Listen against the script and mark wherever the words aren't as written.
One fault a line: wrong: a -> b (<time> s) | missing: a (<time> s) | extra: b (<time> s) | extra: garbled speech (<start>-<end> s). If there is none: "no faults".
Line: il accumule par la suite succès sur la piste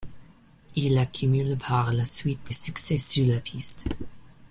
no faults